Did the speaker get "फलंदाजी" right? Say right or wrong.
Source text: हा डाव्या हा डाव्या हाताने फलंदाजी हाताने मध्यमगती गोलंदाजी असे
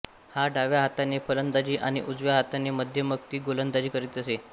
wrong